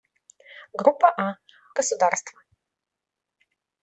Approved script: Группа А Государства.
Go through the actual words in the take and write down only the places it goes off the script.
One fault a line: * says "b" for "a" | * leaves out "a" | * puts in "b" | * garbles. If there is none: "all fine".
all fine